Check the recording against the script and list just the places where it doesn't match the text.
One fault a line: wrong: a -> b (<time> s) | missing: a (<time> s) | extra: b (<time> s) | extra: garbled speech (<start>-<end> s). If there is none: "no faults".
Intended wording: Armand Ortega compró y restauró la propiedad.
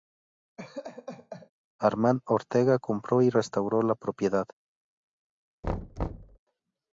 no faults